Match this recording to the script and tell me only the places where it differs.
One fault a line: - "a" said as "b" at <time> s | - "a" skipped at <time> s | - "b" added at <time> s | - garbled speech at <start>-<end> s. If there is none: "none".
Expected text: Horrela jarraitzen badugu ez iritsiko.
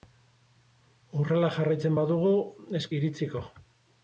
none